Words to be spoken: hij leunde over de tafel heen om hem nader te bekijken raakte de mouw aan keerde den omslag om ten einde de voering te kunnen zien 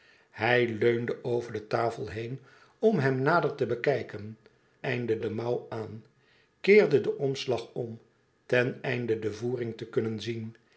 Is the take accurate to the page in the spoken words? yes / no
no